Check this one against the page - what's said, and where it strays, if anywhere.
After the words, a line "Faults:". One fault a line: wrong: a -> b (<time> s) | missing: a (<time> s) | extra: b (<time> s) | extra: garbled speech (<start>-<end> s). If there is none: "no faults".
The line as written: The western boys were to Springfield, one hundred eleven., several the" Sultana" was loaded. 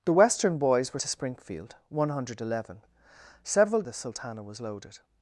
The western boys were to Springfield, one hundred eleven., several the" Sultana" was loaded.
Faults:
no faults